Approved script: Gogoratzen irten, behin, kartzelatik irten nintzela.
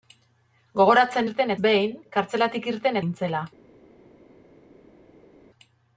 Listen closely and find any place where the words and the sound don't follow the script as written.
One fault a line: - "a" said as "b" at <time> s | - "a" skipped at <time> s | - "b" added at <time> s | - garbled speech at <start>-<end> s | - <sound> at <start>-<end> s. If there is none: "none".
none